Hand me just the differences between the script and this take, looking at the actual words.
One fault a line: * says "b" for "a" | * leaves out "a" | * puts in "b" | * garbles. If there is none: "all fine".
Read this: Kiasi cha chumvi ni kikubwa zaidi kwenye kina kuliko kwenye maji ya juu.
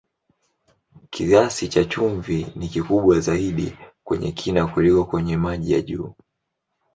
all fine